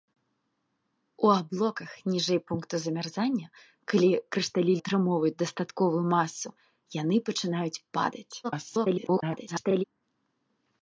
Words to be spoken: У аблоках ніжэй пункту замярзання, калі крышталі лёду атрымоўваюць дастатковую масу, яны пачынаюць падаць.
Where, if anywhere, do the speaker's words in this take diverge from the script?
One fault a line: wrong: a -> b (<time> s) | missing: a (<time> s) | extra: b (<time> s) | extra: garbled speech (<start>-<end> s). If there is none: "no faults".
missing: лёду (4.7 s)
extra: garbled speech (8.4-9.8 s)